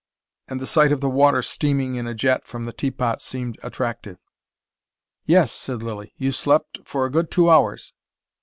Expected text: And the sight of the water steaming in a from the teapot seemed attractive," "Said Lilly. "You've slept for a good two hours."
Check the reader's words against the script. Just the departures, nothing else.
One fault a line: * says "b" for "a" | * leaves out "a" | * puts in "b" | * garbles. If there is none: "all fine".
* puts in "jet"
* puts in "Yes"